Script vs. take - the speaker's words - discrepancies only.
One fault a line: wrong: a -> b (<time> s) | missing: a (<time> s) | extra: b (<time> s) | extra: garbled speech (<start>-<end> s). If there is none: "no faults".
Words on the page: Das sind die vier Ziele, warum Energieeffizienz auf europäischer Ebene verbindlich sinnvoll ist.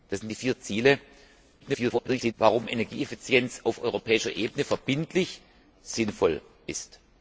extra: garbled speech (1.6-2.3 s)